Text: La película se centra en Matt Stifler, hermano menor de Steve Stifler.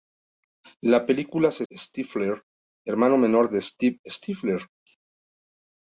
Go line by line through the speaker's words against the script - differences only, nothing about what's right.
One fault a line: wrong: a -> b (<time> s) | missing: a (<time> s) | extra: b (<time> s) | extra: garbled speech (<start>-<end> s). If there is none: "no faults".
missing: centra en Matt (1.7 s)